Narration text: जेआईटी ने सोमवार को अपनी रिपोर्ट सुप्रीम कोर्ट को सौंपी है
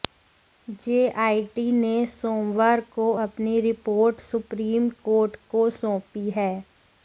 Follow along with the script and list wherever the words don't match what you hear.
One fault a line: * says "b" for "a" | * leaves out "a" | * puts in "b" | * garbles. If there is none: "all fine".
all fine